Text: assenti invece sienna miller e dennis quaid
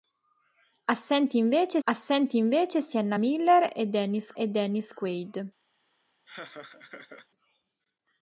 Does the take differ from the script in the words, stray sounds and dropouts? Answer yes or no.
yes